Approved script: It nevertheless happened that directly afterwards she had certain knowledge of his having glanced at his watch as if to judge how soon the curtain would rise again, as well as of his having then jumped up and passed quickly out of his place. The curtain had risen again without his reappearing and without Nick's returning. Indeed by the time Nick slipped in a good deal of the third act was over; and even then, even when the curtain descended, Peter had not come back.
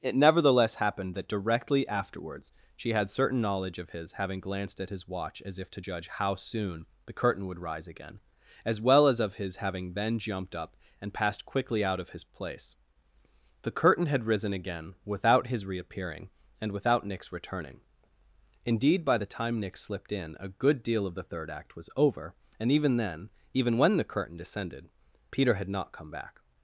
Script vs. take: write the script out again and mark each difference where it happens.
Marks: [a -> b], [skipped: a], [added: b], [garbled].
It nevertheless happened that directly afterwards she had certain knowledge of his having glanced at his watch as if to judge how soon the curtain would rise again, as well as of his having then jumped up and passed quickly out of his place. The curtain had risen again without his reappearing and without Nick's returning. Indeed by the time Nick slipped in a good deal of the third act was over; and even then, even when the curtain descended, Peter had not come back.